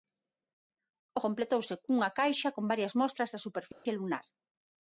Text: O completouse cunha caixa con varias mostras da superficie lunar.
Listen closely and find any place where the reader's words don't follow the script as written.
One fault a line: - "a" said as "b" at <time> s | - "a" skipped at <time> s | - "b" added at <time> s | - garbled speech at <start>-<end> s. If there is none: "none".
none